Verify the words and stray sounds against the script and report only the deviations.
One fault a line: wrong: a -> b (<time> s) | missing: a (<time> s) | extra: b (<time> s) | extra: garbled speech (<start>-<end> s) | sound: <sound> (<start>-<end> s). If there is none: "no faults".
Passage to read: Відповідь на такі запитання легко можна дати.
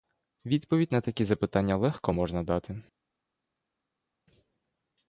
no faults